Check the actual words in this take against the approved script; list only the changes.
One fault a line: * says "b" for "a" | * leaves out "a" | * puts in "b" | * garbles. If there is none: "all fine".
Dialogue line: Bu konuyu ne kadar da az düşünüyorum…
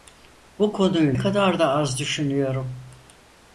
* leaves out "ne"